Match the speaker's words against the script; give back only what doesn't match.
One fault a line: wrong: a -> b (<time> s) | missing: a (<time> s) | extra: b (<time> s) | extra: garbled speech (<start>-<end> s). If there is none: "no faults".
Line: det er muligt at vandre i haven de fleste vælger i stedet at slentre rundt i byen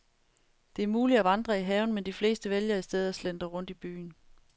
extra: men (1.9 s)